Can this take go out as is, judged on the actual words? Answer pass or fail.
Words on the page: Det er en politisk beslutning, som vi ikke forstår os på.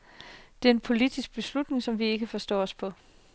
pass